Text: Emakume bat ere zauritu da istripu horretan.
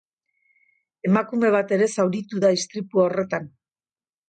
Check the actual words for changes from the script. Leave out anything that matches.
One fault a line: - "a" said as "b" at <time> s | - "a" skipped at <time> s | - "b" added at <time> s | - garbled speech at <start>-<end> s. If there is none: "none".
none